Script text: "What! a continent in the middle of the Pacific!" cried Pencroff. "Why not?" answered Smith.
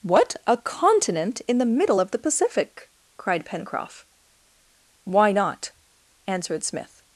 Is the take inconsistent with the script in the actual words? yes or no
no